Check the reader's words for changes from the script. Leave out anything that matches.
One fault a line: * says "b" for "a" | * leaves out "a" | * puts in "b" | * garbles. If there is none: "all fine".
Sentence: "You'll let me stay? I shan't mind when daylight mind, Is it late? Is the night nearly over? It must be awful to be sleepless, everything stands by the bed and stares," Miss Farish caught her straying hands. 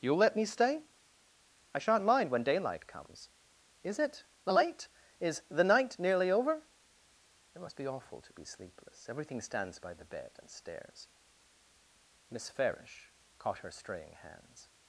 * says "comes" for "mind"